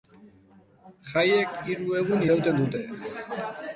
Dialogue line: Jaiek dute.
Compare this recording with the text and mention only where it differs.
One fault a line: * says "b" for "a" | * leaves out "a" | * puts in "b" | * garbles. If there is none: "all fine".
* puts in "hiru egun irauten"